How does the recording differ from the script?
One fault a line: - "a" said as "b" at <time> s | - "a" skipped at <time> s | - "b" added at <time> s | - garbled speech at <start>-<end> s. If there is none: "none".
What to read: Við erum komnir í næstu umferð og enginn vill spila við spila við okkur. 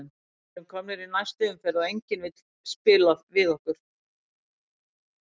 - "spila við" skipped at 3.5 s